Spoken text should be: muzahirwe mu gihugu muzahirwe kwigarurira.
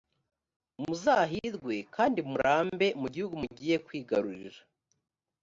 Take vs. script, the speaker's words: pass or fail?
fail